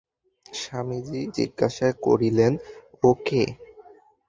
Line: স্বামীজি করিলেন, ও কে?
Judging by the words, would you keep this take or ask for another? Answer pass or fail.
fail